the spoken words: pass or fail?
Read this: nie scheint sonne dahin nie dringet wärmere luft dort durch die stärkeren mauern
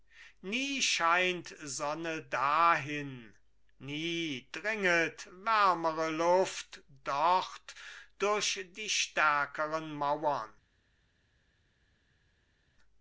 pass